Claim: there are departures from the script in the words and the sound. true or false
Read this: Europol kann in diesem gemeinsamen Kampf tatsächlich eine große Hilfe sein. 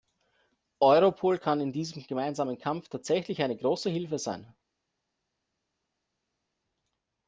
false